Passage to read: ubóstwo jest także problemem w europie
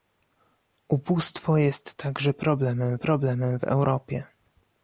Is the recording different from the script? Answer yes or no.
yes